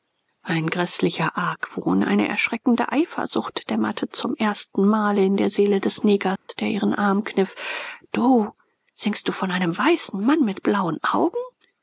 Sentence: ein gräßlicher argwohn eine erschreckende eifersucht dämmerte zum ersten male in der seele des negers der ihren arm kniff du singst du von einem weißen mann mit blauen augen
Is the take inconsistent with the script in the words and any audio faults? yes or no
yes